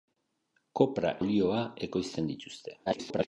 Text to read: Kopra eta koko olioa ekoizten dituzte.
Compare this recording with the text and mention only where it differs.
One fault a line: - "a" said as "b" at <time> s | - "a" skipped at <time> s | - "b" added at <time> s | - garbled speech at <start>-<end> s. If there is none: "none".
- "eta koko" skipped at 1.1 s
- garbled speech at 2.9-3.3 s